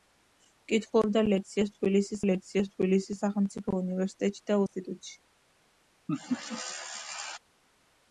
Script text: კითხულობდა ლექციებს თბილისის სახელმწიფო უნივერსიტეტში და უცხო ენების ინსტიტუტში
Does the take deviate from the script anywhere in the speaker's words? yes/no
yes